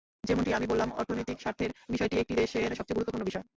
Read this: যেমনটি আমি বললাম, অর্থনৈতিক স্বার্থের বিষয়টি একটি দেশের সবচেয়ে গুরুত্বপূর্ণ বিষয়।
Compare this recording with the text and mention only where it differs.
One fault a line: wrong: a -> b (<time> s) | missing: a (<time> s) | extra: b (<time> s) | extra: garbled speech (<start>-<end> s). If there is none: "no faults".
no faults